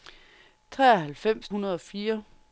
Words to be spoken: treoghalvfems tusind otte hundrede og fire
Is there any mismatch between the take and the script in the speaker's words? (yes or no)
yes